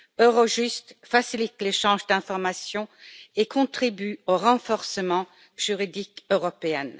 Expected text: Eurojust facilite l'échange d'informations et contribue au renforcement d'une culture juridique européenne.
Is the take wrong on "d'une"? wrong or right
wrong